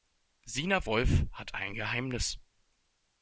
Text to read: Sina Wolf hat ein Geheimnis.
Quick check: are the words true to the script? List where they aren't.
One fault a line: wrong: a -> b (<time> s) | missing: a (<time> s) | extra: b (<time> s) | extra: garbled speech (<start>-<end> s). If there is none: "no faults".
no faults